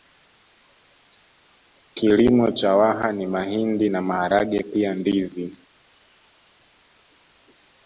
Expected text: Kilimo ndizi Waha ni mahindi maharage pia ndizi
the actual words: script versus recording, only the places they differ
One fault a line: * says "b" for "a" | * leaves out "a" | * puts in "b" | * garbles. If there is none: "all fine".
* says "cha" for "ndizi"
* puts in "na"